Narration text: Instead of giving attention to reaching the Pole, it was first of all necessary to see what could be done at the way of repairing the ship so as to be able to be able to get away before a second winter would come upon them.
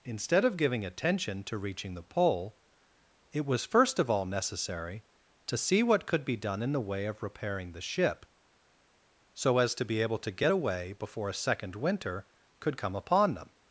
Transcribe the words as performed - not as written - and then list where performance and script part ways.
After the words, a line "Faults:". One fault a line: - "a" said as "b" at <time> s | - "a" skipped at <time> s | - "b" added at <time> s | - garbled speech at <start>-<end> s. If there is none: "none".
Instead of giving attention to reaching the Pole, it was first of all necessary to see what could be done in the way of repairing the ship so as to be able to get away before a second winter could come upon them.
Faults:
- "at" said as "in" at 6.6 s
- "be able to" skipped at 10.3 s
- "would" said as "could" at 12.6 s